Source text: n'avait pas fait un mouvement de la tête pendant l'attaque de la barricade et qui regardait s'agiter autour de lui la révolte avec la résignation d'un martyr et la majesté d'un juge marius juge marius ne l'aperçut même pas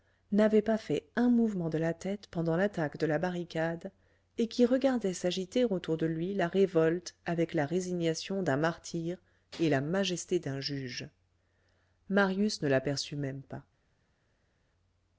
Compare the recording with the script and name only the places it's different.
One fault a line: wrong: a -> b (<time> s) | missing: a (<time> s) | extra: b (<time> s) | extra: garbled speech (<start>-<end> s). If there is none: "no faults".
missing: juge marius (12.6 s)